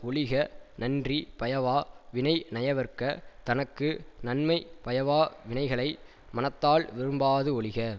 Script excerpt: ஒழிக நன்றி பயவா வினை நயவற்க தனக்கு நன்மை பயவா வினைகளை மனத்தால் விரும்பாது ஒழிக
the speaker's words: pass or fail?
pass